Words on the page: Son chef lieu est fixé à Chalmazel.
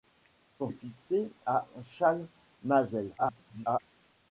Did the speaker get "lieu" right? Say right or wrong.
wrong